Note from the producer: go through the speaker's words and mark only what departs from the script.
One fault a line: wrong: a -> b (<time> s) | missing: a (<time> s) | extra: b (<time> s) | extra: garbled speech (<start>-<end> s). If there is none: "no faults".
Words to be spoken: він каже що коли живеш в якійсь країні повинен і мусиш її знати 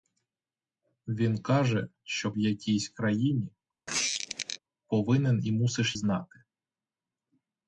missing: коли живеш (2.3 s)
missing: її (6.0 s)